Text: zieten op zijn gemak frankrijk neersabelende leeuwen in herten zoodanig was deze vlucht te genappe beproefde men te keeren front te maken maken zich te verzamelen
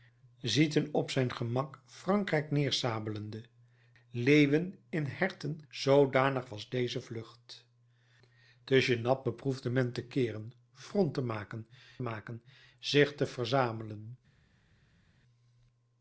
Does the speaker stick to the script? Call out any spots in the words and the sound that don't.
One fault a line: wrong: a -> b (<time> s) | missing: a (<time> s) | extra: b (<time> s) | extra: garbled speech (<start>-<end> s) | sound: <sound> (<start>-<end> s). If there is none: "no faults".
no faults